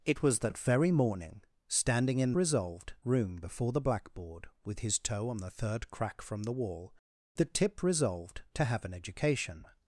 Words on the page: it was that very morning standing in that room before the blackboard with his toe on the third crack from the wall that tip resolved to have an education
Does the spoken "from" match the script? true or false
true